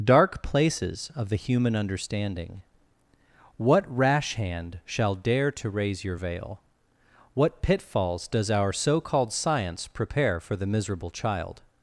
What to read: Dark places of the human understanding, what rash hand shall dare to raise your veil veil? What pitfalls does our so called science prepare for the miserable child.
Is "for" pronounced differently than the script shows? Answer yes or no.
no